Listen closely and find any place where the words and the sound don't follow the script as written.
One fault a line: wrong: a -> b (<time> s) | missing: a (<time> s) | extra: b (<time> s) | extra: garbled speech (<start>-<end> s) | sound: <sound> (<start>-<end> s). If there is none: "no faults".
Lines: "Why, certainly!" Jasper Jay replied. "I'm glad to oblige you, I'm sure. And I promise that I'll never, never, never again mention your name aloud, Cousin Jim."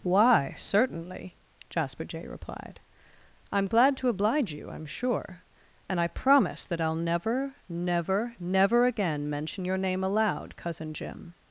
no faults